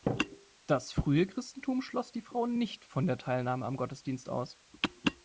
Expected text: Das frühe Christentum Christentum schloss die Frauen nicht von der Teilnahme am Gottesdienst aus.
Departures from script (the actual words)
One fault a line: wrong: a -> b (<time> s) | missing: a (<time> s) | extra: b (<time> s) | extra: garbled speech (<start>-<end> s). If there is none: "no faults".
missing: Christentum (1.8 s)